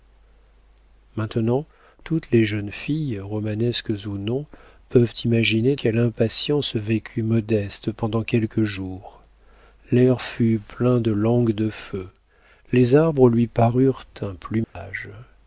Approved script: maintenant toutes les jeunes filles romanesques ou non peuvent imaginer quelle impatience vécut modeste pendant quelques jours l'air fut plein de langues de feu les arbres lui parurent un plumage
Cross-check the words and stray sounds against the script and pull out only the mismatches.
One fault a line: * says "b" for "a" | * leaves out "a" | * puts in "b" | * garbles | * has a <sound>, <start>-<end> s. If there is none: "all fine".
* has a dropout, 14.6-14.8 s